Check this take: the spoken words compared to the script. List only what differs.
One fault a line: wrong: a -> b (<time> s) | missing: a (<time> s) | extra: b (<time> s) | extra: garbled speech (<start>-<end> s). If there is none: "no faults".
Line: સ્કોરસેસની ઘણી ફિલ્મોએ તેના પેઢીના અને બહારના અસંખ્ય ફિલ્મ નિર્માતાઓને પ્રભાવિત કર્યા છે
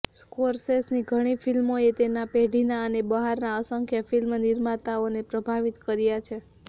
no faults